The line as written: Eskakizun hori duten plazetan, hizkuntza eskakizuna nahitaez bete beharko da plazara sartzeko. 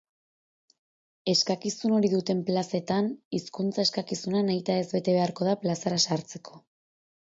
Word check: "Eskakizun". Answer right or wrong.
right